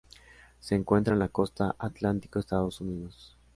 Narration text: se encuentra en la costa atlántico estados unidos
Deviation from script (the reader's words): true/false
false